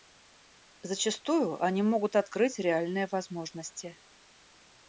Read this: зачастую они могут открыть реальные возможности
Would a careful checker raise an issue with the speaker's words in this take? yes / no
no